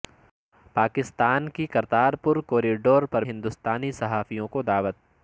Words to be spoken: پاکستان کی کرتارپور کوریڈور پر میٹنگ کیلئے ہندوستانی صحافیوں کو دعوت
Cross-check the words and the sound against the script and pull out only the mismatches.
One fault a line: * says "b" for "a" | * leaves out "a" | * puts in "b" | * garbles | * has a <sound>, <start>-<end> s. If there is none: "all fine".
* leaves out "میٹنگ کیلئے"